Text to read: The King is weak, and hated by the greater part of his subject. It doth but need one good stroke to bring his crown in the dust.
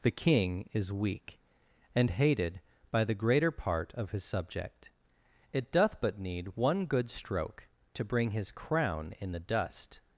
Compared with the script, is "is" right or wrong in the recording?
right